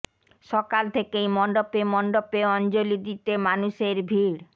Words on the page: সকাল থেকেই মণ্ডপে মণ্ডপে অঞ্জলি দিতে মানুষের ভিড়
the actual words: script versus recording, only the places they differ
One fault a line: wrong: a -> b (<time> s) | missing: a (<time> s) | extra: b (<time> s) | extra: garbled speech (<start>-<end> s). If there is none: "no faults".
no faults